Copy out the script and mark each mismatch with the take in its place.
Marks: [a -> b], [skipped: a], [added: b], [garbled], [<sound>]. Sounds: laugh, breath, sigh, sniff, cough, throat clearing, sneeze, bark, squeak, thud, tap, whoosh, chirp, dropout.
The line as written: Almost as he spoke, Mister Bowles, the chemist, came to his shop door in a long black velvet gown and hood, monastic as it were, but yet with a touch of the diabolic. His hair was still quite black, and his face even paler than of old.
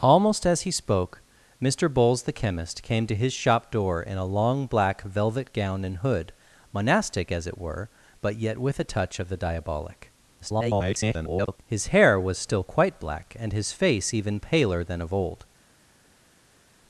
Almost as he spoke, Mister Bowles, the chemist, came to his shop door in a long black velvet gown and hood, monastic as it were, but yet with a touch of the diabolic. [garbled] His hair was still quite black, and his face even paler than of old.